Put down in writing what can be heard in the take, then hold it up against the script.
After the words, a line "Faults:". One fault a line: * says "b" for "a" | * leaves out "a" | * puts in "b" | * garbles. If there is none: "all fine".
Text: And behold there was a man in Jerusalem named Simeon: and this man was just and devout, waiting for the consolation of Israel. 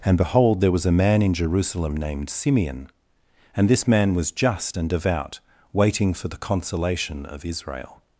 And behold there was a man in Jerusalem named Simeon: and this man was just and devout, waiting for the consolation of Israel.
Faults:
all fine